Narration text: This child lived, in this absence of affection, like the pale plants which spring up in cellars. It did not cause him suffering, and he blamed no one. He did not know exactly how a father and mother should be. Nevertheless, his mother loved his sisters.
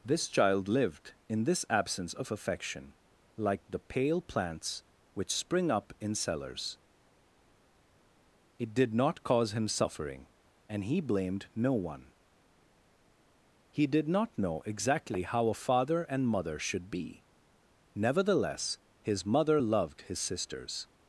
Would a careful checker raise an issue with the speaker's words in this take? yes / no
no